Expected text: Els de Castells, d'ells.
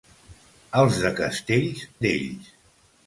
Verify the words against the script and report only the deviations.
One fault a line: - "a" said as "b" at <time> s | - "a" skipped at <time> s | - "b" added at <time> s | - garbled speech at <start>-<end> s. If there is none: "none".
none